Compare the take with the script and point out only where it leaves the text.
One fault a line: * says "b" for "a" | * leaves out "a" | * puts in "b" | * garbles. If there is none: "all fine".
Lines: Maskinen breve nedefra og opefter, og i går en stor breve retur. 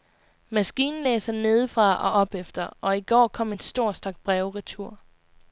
* says "læser" for "breve"
* puts in "kom"
* puts in "stak"